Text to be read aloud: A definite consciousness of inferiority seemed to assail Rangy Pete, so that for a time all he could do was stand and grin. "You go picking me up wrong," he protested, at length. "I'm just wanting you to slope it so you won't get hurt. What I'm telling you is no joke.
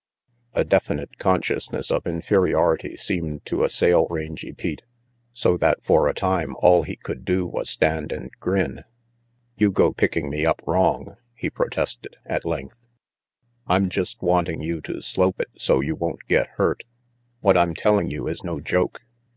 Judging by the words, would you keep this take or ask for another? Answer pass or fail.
pass